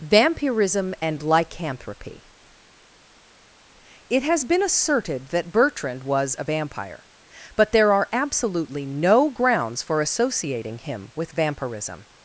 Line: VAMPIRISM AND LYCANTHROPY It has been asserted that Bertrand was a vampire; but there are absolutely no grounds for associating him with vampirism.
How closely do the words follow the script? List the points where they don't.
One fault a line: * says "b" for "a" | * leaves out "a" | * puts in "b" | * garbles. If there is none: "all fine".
all fine